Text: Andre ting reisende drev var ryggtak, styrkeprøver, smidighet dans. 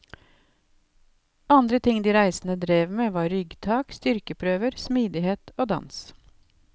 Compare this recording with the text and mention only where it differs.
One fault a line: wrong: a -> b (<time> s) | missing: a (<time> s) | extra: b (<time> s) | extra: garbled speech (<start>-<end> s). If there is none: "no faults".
extra: de (2.0 s)
extra: med (3.0 s)
extra: og (5.6 s)